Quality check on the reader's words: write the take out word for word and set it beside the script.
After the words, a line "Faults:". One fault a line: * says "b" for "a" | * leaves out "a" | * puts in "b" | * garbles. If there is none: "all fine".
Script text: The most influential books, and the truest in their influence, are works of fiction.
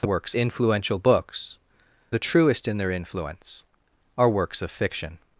The works influential books, the truest in their influence, are works of fiction.
Faults:
* says "works" for "most"
* leaves out "and"